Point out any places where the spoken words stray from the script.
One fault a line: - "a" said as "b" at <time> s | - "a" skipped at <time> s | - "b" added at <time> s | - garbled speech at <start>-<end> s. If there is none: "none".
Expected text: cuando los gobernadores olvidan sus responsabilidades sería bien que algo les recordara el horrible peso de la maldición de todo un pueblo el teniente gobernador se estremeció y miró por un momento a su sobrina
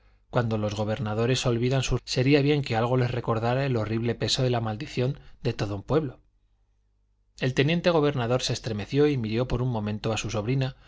- "responsabilidades" skipped at 2.0 s